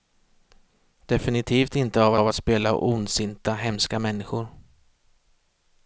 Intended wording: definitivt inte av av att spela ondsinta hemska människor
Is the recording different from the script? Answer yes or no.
no